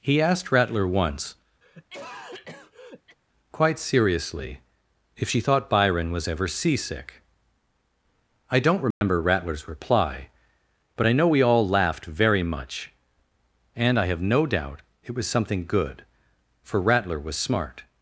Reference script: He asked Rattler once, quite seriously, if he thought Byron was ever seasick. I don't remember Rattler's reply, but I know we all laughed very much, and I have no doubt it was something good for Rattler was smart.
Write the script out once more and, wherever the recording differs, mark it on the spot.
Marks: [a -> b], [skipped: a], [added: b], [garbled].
He asked Rattler once, quite seriously, if [he -> she] thought Byron was ever seasick. I don't remember Rattler's reply, but I know we all laughed very much, and I have no doubt it was something good for Rattler was smart.